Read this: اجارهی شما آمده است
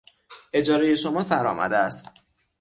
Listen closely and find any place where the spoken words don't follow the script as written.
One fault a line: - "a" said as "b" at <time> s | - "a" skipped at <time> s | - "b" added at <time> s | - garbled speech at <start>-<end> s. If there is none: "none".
- "سر" added at 1.2 s